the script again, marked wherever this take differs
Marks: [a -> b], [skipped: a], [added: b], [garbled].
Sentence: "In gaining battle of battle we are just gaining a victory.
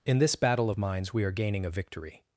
"In [gaining -> this] battle of [battle -> minds] we are [skipped: just] gaining a victory.